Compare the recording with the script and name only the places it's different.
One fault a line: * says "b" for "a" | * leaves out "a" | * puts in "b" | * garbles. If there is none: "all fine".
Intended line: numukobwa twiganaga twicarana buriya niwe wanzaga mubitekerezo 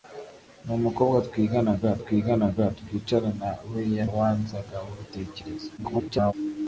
* puts in "twiganaga"
* leaves out "niwe"
* garbles